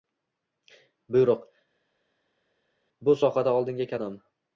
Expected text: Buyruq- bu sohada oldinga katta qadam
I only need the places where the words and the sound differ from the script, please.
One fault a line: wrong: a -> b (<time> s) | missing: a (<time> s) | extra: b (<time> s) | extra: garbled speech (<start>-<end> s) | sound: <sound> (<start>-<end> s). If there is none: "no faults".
missing: katta (3.9 s)